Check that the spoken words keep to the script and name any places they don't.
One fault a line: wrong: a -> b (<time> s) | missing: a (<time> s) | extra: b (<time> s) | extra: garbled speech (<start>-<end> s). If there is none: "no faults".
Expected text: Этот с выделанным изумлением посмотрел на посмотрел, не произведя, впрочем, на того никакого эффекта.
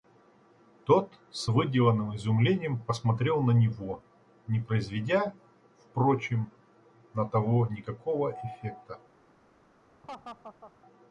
wrong: Этот -> Тот (0.8 s)
wrong: посмотрел -> него (3.5 s)